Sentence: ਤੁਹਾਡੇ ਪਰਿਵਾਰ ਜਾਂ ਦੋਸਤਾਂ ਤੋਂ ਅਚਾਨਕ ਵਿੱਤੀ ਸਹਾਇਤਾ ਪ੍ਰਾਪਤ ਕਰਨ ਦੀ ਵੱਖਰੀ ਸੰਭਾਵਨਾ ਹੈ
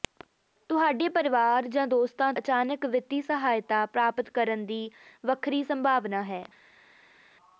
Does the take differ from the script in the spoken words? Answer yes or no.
yes